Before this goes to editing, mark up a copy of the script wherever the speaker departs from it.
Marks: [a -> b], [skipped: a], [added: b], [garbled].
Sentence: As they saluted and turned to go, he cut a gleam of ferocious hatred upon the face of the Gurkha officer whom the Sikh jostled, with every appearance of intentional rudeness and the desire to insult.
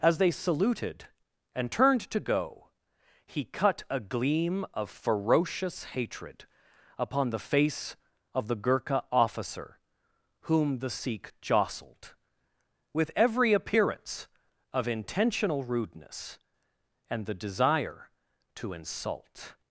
As they saluted and turned to go, he cut a gleam of ferocious hatred upon the face of the Gurkha officer whom the Sikh jostled, with every appearance of intentional rudeness and the desire to insult.